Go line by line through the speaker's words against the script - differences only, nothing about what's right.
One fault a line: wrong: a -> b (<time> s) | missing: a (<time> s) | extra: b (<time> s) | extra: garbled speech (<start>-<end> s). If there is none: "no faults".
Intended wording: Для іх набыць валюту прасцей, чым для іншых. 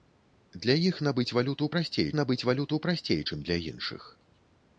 extra: набыць валюту прасцей (2.2 s)